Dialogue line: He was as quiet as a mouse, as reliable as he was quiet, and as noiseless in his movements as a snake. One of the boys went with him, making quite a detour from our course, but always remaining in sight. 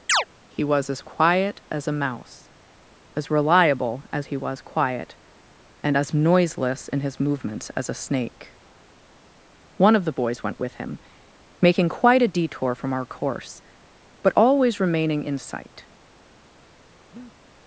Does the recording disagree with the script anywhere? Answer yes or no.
no